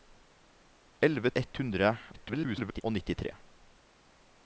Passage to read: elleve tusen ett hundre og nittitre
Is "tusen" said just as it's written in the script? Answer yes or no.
no